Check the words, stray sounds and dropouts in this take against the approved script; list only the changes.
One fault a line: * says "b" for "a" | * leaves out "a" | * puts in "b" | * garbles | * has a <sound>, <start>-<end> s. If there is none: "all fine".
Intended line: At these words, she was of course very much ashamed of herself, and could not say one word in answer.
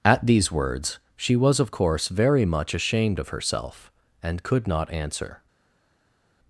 * leaves out "say one word in"